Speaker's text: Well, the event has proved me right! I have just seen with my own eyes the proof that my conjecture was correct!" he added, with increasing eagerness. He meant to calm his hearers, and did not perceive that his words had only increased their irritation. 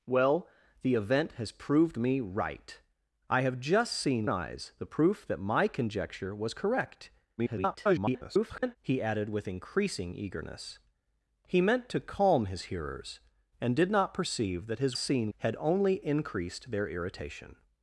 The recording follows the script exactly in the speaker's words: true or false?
false